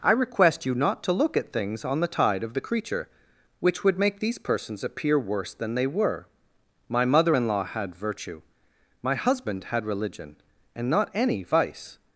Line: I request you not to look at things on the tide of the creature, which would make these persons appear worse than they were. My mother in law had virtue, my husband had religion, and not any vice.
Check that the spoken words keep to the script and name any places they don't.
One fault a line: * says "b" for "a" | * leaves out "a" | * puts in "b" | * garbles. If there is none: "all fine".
all fine